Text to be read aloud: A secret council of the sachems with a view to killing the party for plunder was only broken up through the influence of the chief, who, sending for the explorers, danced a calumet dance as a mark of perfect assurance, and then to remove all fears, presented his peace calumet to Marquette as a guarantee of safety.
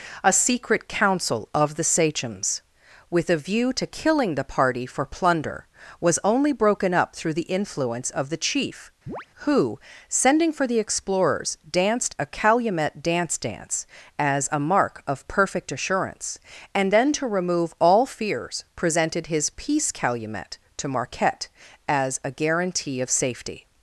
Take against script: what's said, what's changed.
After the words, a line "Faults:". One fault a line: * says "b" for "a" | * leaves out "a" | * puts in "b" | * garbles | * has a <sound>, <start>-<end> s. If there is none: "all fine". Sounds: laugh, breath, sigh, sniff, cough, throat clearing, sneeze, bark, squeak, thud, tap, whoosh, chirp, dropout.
A secret council of the sachems with a view to killing the party for plunder was only broken up through the influence of the chief, who, sending for the explorers, danced a calumet dance dance as a mark of perfect assurance, and then to remove all fears, presented his peace calumet to Marquette as a guarantee of safety.
Faults:
* has a chirp, 9.1-9.3 s
* puts in "dance"